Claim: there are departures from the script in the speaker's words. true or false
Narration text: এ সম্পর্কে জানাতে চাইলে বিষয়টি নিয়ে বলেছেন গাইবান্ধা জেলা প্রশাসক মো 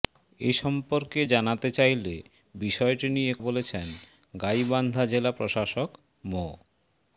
false